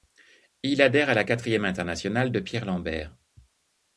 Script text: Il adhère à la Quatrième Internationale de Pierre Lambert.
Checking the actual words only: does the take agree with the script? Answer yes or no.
yes